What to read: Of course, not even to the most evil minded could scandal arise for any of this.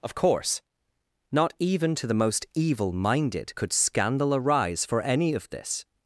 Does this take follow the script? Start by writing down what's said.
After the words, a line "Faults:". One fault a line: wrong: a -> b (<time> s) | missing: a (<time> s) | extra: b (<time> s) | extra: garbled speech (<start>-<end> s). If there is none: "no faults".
Of course, not even to the most evil minded could scandal arise for any of this.
Faults:
no faults